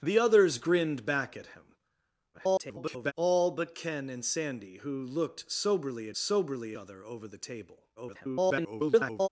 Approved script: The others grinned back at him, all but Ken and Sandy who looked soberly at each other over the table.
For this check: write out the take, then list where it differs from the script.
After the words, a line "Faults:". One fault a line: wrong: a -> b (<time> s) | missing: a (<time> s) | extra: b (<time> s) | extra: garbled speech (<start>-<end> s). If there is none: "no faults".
The others grinned back at him, [garbled] all but Ken and Sandy who looked soberly at soberly other over the table. [garbled]
Faults:
extra: garbled speech (2.3-3.1 s)
wrong: each -> soberly (6.2 s)
extra: garbled speech (8.0-9.3 s)